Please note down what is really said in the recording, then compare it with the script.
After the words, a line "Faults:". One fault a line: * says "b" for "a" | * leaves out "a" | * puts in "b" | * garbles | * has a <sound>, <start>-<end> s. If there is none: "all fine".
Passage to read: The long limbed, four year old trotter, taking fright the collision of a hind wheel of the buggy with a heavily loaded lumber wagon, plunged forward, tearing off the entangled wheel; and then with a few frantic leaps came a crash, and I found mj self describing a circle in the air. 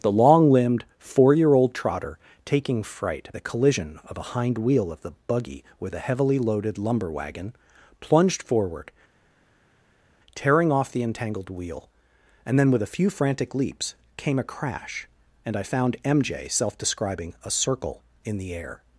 The long limbed, four year old trotter, taking fright the collision of a hind wheel of the buggy with a heavily loaded lumber wagon, plunged forward, tearing off the entangled wheel; and then with a few frantic leaps came a crash, and I found mj self describing a circle in the air.
Faults:
all fine